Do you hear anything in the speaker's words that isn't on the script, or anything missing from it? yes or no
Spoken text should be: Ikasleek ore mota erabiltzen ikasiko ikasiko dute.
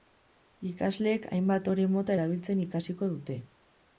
yes